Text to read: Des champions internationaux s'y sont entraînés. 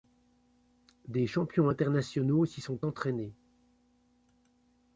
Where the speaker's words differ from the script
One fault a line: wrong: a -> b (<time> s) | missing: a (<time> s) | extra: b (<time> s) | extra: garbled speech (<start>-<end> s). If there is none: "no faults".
no faults